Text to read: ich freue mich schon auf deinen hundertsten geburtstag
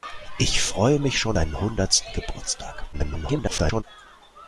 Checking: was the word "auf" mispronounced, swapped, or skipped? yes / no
yes